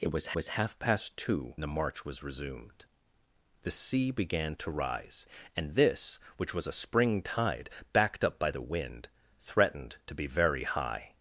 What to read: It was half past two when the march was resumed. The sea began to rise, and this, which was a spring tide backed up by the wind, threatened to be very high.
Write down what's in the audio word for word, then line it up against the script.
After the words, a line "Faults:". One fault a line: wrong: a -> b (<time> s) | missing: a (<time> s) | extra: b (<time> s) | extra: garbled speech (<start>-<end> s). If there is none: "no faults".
It was was half past two the march was resumed. The sea began to rise, and this, which was a spring tide backed up by the wind, threatened to be very high.
Faults:
extra: was (0.3 s)
missing: when (1.6 s)